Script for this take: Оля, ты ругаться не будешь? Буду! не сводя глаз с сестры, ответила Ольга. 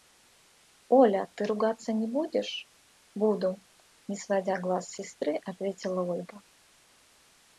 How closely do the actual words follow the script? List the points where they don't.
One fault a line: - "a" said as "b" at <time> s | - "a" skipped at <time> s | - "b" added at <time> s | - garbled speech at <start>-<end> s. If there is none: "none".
none